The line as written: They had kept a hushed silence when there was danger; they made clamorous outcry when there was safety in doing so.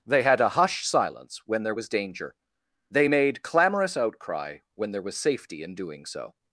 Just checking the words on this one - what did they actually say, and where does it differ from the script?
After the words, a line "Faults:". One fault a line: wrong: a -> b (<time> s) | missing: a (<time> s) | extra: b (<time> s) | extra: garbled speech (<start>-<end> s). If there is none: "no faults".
They had a hushed silence when there was danger; they made clamorous outcry when there was safety in doing so.
Faults:
missing: kept (0.4 s)